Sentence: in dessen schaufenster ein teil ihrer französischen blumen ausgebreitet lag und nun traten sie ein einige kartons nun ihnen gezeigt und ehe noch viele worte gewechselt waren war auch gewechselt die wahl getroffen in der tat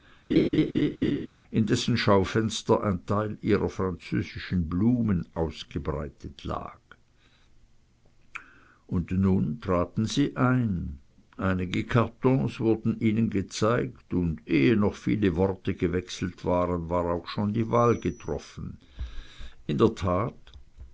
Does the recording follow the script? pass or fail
fail